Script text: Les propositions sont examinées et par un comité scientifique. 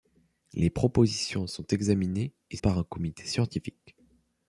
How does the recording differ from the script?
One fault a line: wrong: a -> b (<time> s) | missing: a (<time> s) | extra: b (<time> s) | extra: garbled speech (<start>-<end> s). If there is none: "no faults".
no faults